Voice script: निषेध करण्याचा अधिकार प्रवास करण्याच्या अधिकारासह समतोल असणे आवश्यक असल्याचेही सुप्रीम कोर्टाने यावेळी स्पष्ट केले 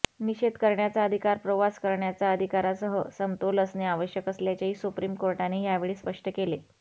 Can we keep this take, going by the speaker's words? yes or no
yes